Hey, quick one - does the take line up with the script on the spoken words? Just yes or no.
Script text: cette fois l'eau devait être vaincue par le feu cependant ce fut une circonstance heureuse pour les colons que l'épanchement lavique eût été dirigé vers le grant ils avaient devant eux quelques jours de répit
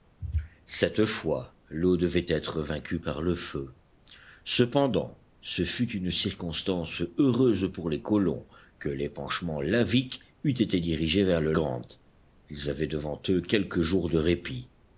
yes